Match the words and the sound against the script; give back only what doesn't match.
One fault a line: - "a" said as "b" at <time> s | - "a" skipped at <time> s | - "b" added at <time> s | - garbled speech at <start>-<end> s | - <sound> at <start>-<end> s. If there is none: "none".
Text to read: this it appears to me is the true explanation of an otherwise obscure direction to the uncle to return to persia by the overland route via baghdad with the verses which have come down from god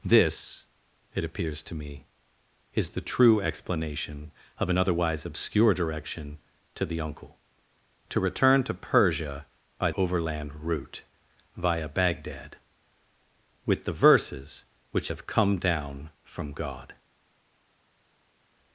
- "the" skipped at 9.9 s